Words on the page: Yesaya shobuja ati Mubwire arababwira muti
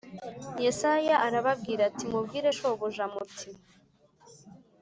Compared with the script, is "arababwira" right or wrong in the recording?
wrong